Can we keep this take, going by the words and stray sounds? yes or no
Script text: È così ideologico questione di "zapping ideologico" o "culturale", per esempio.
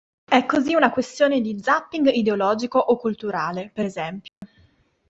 no